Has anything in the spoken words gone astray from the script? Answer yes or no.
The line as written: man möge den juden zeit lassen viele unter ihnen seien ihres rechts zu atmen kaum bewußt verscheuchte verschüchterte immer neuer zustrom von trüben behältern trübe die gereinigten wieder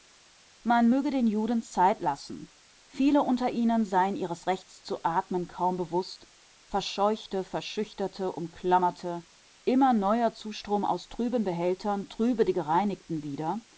yes